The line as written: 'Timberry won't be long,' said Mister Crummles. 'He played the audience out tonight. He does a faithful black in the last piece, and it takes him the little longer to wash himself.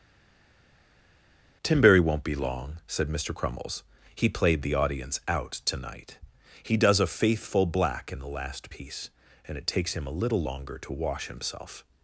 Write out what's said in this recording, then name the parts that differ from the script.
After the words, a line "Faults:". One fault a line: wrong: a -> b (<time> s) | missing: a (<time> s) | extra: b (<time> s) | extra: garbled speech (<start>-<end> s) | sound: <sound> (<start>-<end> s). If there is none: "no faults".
'Timberry won't be long,' said Mister Crummles. 'He played the audience out tonight. He does a faithful black in the last piece, and it takes him a little longer to wash himself.
Faults:
wrong: the -> a (10.1 s)